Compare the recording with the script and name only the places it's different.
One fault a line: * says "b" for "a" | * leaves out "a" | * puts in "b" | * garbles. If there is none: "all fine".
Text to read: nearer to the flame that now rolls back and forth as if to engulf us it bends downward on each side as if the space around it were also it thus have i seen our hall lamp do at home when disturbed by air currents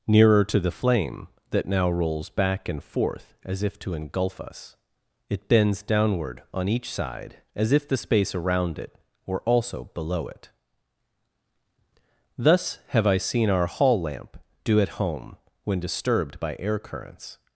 * puts in "below"